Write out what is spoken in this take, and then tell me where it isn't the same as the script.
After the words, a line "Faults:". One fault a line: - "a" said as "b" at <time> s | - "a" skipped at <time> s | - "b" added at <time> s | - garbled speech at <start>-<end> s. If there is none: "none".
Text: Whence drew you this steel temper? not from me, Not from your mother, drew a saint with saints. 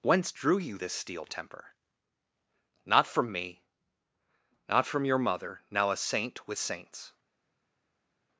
Whence drew you this steel temper? not from me, Not from your mother, now a saint with saints.
Faults:
- "drew" said as "now" at 5.7 s